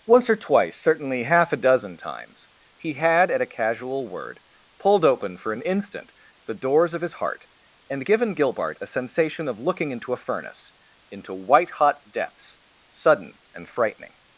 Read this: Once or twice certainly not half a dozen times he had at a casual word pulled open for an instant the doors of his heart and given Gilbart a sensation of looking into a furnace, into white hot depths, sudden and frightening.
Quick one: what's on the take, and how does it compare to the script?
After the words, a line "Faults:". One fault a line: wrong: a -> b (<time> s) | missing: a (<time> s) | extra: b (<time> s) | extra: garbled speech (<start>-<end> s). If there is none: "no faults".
Once or twice certainly half a dozen times he had at a casual word pulled open for an instant the doors of his heart and given Gilbart a sensation of looking into a furnace, into white hot depths, sudden and frightening.
Faults:
missing: not (1.2 s)